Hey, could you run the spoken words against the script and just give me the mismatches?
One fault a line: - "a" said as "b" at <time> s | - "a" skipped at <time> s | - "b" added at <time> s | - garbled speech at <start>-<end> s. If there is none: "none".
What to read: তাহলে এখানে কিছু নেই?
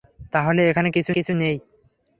- "কিছু" added at 1.1 s